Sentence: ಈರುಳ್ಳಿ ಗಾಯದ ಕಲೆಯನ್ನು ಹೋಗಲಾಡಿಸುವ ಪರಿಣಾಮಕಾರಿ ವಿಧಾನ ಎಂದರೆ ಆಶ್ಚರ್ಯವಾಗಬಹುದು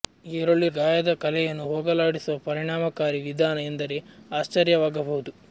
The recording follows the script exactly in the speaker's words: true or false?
true